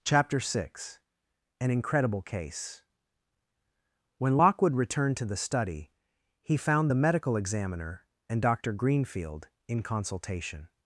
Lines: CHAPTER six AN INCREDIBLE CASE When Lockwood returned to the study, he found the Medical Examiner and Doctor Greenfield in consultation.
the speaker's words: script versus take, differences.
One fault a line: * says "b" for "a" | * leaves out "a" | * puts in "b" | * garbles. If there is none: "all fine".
all fine